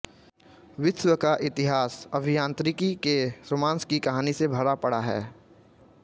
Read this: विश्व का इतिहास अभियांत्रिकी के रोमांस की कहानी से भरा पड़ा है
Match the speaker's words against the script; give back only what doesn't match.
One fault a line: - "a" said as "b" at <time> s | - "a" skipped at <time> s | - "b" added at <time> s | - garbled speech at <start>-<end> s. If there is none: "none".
none